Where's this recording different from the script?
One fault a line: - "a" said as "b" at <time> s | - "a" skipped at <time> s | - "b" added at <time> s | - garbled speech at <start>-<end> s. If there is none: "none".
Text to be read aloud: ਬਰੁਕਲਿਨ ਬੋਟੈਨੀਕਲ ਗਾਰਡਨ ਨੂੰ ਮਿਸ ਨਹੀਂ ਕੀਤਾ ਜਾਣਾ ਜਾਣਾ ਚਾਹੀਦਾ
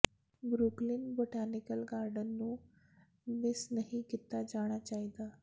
- "ਜਾਣਾ" skipped at 4.8 s